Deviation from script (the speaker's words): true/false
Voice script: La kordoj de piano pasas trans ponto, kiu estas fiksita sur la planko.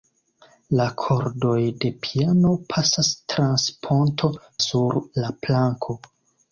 true